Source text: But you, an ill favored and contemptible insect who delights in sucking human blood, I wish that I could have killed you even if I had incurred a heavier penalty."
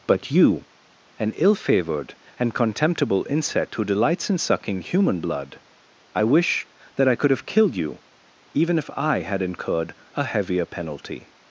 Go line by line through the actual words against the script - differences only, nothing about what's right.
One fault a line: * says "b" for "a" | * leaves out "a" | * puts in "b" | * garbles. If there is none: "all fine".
all fine